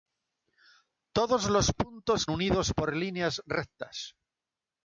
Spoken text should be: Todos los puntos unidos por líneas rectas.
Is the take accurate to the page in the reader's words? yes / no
yes